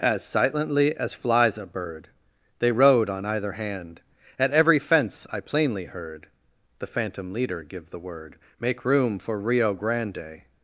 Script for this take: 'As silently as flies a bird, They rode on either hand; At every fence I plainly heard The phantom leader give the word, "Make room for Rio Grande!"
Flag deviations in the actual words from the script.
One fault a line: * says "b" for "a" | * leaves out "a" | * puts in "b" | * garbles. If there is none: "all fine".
all fine